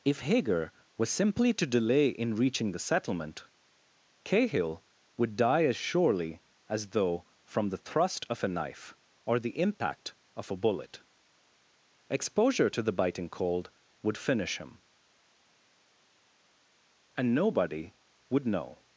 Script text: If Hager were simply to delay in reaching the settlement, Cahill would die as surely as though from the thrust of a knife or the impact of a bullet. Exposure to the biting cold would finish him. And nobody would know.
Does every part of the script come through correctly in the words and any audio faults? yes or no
no